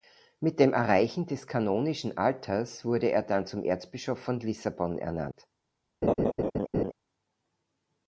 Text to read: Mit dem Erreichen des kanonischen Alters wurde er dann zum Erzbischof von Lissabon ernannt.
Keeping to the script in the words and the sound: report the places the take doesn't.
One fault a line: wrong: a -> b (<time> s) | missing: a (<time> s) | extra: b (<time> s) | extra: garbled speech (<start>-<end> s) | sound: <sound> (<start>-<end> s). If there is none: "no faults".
sound: laugh (6.0-6.9 s)